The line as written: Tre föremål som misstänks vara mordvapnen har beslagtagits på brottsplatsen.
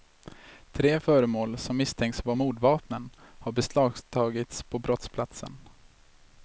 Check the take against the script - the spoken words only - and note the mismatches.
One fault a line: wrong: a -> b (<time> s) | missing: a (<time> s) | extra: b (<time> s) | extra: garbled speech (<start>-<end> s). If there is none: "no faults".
no faults